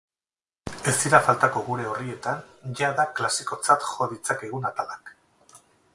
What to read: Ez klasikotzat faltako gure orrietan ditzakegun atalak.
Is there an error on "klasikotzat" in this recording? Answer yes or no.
yes